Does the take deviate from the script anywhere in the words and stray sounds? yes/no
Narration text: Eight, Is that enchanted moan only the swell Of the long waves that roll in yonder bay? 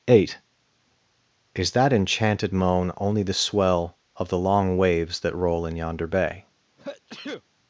yes